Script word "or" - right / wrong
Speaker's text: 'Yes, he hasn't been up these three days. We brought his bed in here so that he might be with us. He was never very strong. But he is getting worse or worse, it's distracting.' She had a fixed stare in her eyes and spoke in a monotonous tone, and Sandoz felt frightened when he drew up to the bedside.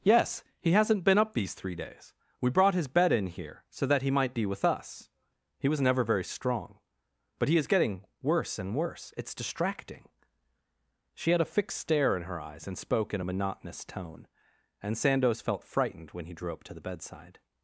wrong